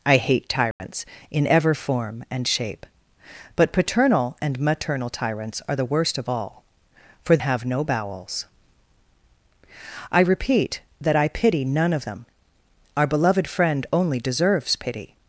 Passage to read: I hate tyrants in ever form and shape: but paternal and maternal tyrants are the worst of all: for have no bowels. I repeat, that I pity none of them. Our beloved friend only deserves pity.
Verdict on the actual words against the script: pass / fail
pass